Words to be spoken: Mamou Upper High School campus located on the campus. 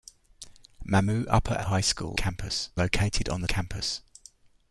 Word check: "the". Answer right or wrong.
right